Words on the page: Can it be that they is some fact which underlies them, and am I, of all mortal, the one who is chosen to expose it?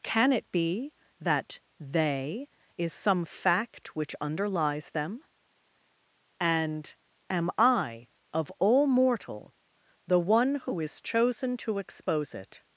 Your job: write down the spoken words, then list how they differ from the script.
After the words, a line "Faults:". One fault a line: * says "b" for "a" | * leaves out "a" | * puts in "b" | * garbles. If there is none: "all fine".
Can it be that they is some fact which underlies them, and am I, of all mortal, the one who is chosen to expose it?
Faults:
all fine